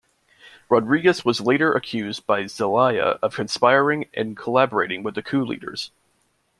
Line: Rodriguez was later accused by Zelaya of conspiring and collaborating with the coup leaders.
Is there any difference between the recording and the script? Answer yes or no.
no